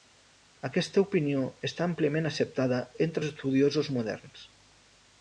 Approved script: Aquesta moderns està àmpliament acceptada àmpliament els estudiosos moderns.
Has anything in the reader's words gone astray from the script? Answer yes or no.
yes